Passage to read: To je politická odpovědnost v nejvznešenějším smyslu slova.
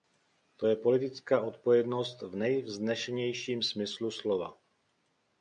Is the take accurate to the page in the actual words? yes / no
yes